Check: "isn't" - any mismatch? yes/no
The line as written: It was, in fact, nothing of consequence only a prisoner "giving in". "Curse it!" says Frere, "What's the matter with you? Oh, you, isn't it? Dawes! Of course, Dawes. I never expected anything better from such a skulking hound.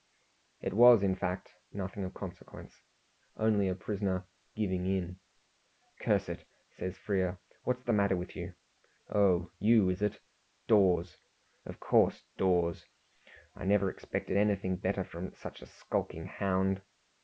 yes